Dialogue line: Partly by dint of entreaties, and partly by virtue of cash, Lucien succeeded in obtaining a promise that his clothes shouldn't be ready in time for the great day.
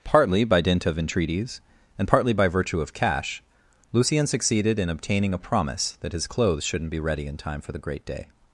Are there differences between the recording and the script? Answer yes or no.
no